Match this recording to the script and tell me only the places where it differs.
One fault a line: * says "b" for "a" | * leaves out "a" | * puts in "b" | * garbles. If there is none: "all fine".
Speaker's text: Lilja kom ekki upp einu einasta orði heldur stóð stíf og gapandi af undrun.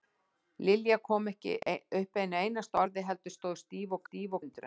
* says "stíf" for "gapandi"